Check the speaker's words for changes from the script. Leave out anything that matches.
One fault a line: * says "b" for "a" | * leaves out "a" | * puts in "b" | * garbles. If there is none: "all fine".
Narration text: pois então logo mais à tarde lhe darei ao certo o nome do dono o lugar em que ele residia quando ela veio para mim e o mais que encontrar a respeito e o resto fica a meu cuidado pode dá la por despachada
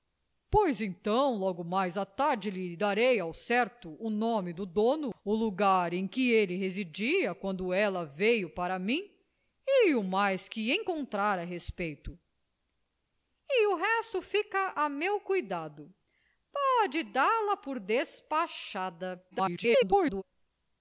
* garbles